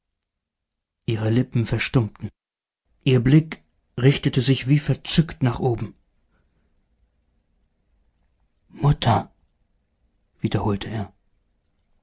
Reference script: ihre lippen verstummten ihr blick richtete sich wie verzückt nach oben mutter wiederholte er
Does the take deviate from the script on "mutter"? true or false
false